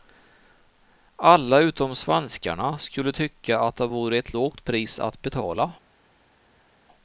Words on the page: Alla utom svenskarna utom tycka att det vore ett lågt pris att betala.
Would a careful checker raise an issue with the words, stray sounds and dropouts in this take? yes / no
yes